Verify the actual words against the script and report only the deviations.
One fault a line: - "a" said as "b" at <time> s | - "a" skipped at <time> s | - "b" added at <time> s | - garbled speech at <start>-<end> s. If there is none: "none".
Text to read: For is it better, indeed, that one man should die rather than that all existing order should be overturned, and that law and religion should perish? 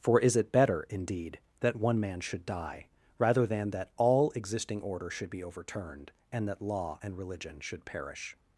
none